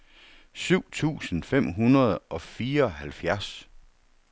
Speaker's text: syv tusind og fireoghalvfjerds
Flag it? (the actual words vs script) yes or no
yes